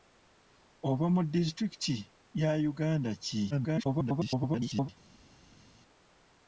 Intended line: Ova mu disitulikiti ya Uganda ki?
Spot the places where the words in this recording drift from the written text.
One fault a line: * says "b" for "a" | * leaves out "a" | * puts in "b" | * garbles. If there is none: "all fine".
* garbles